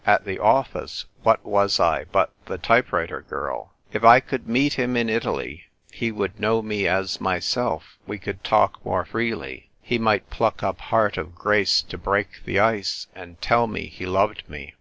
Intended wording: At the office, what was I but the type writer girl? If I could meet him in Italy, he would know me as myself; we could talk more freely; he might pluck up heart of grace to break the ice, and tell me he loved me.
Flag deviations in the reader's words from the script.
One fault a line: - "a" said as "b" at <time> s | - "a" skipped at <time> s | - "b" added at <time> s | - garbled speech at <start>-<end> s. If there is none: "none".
none